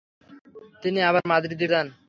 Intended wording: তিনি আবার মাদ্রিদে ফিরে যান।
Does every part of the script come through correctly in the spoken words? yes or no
no